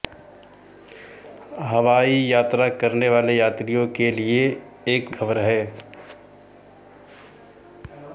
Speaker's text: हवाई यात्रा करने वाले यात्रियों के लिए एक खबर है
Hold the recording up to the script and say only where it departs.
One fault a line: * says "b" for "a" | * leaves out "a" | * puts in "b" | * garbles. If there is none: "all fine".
all fine